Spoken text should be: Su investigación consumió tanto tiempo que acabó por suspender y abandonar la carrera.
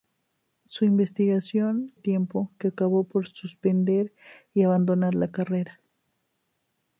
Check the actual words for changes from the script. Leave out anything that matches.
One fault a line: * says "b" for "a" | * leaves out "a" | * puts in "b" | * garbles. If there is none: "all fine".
* leaves out "consumió tanto"